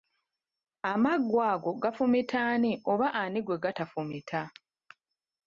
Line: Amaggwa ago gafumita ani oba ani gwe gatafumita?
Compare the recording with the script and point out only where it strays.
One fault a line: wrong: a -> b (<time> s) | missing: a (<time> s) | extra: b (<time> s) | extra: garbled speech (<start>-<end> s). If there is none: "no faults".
no faults